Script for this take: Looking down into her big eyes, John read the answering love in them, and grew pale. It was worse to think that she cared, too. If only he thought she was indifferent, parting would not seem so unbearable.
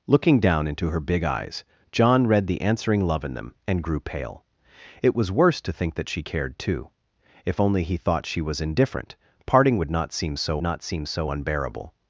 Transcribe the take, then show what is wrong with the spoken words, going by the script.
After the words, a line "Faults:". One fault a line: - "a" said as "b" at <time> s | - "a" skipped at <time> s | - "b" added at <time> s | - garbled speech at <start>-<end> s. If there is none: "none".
Looking down into her big eyes, John read the answering love in them, and grew pale. It was worse to think that she cared, too. If only he thought she was indifferent, parting would not seem so not seem so unbearable.
Faults:
- "not seem so" added at 10.6 s